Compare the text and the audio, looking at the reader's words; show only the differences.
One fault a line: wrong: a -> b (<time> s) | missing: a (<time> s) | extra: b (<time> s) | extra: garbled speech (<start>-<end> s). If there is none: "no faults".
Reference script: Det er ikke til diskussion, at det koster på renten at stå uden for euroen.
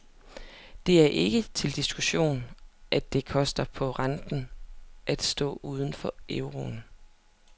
no faults